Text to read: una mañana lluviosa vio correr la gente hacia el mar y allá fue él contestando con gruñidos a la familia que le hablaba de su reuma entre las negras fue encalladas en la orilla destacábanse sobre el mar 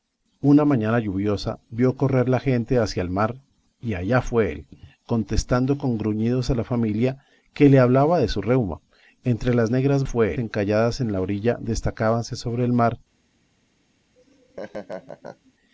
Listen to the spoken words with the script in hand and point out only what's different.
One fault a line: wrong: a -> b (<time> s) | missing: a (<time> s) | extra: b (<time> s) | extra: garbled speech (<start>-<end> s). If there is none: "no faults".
no faults